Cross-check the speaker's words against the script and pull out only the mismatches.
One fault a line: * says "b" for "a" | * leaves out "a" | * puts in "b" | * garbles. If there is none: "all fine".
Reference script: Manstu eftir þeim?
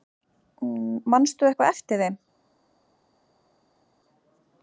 * puts in "eitthvað"